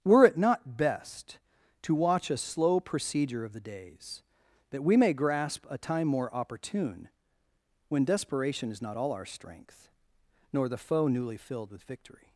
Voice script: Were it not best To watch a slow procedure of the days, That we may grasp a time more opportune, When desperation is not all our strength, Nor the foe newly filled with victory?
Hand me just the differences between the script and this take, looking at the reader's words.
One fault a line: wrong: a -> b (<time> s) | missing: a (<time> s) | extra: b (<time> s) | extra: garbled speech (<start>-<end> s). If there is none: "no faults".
no faults